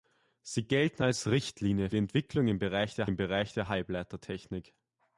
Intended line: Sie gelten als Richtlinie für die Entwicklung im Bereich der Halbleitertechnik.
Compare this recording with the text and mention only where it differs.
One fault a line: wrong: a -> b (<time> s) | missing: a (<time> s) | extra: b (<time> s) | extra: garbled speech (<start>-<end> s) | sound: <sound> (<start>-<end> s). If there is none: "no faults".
missing: für (1.9 s)
extra: im Bereich der (3.0 s)